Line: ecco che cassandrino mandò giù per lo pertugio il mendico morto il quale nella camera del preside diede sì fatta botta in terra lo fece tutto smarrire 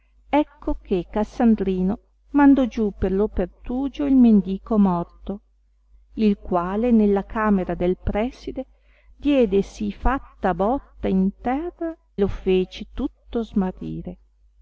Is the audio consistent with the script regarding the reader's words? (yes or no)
yes